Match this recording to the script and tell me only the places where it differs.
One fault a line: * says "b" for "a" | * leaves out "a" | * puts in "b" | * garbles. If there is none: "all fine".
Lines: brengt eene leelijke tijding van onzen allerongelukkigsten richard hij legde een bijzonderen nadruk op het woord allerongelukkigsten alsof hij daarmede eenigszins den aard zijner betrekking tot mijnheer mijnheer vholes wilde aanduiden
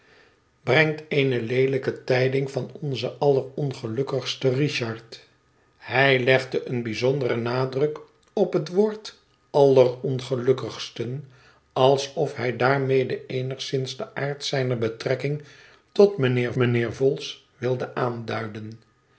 all fine